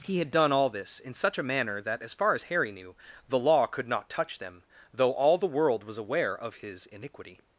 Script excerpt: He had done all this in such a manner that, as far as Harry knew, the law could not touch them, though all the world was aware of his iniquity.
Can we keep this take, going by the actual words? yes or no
yes